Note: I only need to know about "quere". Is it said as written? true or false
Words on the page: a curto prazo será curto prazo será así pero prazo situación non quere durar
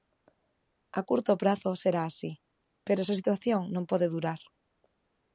false